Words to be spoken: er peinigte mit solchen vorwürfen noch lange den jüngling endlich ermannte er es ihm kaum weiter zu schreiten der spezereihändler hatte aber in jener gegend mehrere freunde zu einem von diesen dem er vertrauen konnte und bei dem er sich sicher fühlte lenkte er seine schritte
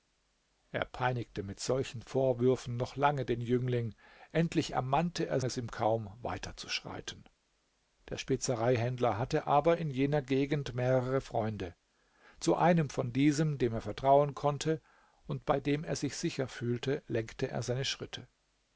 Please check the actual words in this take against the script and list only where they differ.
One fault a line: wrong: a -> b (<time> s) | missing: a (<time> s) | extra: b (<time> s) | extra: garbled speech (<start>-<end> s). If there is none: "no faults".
no faults